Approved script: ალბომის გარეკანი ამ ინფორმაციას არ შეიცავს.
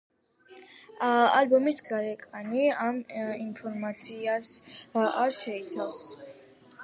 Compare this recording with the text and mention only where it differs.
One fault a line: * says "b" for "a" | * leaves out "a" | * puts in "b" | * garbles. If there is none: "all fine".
all fine